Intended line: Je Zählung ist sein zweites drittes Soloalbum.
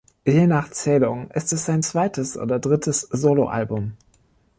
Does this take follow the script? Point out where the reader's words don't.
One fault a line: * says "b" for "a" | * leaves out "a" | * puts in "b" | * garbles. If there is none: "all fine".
* puts in "nach"
* puts in "es"
* puts in "oder"